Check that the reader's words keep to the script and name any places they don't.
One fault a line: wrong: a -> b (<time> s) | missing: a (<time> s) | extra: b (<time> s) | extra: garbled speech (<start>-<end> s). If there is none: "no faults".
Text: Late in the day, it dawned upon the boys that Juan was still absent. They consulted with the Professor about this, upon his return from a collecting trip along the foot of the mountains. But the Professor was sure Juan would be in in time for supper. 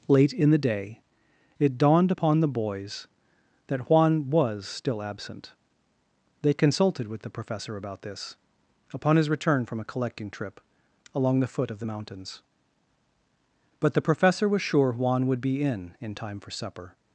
no faults